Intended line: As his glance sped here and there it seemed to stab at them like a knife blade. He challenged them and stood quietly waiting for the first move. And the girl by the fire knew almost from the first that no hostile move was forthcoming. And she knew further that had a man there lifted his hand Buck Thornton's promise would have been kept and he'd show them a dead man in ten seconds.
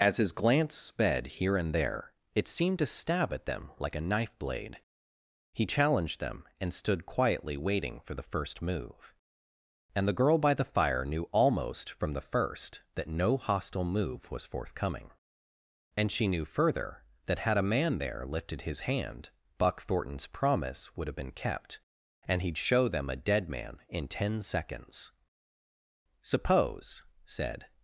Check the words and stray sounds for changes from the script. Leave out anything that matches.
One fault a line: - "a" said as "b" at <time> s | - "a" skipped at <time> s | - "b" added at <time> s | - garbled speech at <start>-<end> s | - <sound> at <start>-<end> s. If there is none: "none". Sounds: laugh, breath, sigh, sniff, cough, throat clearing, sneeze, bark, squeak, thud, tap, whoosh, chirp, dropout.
- "Suppose said" added at 26.2 s